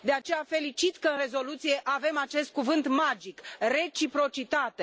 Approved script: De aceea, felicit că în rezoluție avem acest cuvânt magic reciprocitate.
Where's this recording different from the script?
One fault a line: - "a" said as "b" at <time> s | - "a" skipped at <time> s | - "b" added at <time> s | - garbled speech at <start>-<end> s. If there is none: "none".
none